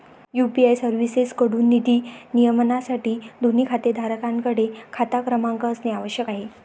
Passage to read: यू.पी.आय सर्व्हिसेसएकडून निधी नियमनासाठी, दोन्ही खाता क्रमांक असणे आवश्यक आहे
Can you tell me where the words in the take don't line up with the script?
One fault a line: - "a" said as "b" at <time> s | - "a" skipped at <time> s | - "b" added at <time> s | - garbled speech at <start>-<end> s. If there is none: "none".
- "खातेधारकांकडे" added at 3.6 s